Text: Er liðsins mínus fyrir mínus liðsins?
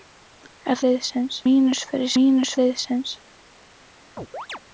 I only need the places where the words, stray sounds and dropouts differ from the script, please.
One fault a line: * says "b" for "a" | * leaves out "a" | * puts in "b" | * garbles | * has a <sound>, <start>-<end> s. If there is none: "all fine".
* has a chirp, 4.2-4.6 s